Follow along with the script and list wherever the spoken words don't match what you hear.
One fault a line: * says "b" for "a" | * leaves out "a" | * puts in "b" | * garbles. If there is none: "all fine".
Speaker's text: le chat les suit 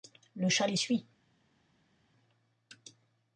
all fine